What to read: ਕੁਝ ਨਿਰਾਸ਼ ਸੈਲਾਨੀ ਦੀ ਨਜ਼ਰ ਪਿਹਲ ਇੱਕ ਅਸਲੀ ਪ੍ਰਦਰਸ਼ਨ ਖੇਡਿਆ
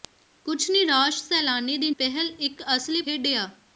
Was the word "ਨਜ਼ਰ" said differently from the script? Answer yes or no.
yes